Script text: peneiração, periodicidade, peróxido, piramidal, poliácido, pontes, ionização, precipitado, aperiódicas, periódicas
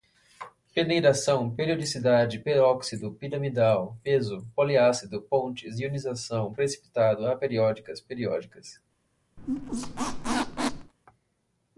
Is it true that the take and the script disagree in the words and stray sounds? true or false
true